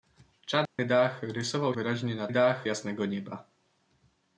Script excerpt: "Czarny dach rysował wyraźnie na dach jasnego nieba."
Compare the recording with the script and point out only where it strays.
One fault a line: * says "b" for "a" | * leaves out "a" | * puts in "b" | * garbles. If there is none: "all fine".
all fine